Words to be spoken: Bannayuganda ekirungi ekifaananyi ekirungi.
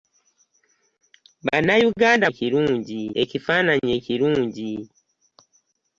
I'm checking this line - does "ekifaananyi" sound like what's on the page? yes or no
yes